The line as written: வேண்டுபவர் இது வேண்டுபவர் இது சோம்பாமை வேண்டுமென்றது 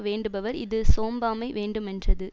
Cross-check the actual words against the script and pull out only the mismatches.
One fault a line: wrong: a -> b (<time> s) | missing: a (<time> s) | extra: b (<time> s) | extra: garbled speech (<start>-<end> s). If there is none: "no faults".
missing: வேண்டுபவர் இது (0.8 s)